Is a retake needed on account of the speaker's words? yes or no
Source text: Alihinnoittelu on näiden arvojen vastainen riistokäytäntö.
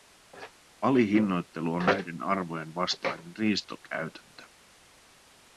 no